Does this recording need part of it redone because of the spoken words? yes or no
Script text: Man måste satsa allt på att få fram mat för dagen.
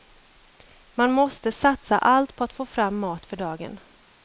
no